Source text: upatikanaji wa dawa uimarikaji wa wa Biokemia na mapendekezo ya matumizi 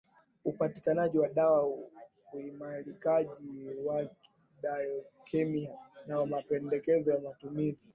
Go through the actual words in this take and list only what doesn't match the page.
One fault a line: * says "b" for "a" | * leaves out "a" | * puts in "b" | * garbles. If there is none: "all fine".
* leaves out "wa"